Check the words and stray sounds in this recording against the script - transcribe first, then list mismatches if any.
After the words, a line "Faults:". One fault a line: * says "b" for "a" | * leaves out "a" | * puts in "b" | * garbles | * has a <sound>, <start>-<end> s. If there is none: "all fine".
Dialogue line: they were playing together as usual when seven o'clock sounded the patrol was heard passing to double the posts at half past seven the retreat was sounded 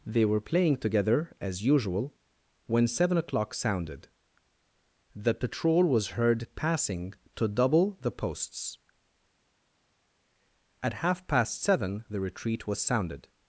they were playing together as usual when seven o'clock sounded the patrol was heard passing to double the posts at half past seven the retreat was sounded
Faults:
all fine